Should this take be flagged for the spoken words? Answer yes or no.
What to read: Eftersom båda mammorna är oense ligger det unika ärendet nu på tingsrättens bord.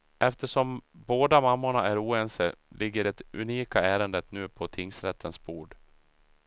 no